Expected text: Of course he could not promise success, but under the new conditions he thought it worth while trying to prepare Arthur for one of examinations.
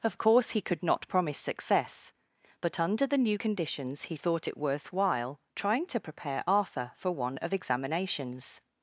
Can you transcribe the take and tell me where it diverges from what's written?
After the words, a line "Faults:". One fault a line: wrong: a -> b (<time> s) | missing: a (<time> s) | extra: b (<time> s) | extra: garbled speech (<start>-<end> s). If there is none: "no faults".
Of course he could not promise success, but under the new conditions he thought it worth while trying to prepare Arthur for one of examinations.
Faults:
no faults